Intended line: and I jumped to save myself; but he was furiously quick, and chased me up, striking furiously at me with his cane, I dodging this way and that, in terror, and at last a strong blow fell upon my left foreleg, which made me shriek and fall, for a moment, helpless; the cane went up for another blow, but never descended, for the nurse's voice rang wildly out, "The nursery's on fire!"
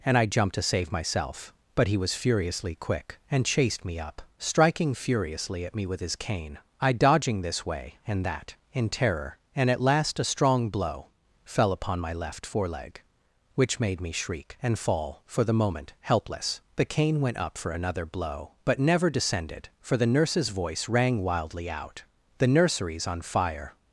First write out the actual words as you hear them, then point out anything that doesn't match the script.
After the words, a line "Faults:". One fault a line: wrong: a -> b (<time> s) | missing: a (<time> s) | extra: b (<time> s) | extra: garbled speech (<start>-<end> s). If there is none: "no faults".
and I jumped to save myself; but he was furiously quick, and chased me up, striking furiously at me with his cane, I dodging this way and that, in terror, and at last a strong blow fell upon my left foreleg, which made me shriek and fall, for the moment, helpless; the cane went up for another blow, but never descended, for the nurse's voice rang wildly out, "The nursery's on fire!"
Faults:
wrong: a -> the (15.4 s)